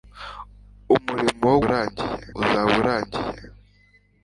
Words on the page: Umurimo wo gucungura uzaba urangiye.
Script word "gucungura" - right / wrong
wrong